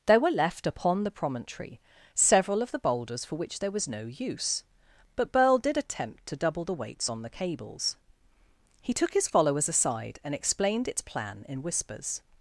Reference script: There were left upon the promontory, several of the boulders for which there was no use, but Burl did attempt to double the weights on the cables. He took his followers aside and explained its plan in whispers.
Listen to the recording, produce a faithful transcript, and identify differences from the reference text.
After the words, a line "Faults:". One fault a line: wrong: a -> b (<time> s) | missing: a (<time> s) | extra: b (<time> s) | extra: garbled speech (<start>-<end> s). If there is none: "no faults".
There were left upon the promontory, several of the boulders for which there was no use, but Burl did attempt to double the weights on the cables. He took his followers aside and explained its plan in whispers.
Faults:
no faults